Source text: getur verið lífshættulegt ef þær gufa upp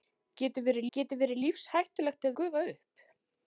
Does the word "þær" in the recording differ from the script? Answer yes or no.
yes